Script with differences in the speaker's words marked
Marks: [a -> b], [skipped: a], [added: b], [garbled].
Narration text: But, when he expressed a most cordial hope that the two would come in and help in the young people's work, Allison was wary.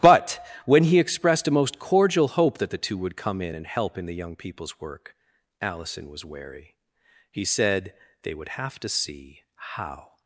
But, when he expressed a most cordial hope that the two would come in and help in the young people's work, Allison was wary. [added: He said they would have to see how]